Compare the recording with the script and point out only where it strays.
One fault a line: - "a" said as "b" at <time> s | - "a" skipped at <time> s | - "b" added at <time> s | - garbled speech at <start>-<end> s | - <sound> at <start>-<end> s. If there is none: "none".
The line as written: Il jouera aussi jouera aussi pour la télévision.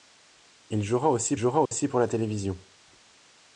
- dropout at 1.7-1.7 s